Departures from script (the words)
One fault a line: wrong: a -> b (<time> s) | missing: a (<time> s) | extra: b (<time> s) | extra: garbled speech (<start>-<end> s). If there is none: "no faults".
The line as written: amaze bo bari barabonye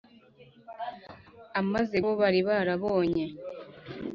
no faults